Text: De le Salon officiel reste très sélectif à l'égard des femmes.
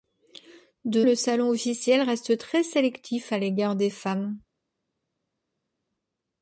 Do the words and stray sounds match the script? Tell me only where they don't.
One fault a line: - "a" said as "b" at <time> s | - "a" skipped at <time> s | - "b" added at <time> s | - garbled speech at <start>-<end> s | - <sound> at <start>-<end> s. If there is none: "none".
none